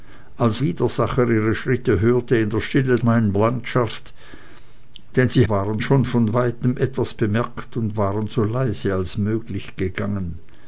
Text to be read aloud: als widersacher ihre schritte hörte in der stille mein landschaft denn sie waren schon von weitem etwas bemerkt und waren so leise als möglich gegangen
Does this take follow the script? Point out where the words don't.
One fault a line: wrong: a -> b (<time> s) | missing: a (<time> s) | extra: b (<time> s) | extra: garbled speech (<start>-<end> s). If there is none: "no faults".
no faults